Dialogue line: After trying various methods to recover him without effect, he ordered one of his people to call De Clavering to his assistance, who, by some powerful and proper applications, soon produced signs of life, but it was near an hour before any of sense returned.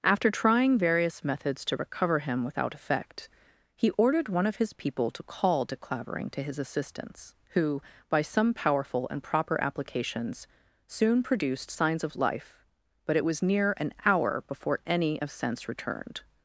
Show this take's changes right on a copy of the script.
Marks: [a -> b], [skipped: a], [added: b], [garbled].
After trying various methods to recover him without effect, he ordered one of his people to call De Clavering to his assistance, who, by some powerful and proper applications, soon produced signs of life, but it was near an hour before any of sense returned.